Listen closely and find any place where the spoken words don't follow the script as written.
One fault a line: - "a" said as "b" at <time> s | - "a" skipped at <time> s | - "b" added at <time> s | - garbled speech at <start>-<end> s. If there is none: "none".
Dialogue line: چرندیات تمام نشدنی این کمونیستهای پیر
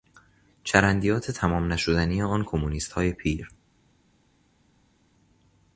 - "این" said as "آن" at 2.2 s